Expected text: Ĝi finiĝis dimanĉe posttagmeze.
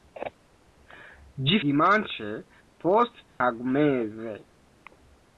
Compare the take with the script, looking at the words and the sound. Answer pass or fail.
fail